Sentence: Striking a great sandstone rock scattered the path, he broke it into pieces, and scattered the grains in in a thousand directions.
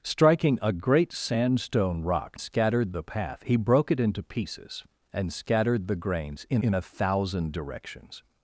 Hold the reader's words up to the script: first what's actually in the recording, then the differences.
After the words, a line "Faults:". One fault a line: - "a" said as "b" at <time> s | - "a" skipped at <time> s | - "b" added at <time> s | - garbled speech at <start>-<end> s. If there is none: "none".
Striking a great sandstone rock scattered the path, he broke it into pieces, and scattered the grains in in a thousand directions.
Faults:
none